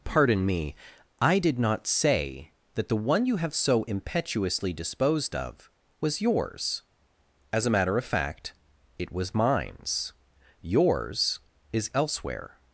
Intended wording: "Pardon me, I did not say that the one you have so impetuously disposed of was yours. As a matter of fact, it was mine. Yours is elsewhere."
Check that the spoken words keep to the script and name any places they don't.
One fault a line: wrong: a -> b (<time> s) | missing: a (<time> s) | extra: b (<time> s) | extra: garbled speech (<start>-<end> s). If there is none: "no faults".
wrong: mine -> mines (9.3 s)